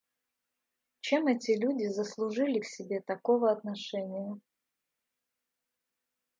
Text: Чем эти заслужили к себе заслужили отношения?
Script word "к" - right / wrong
right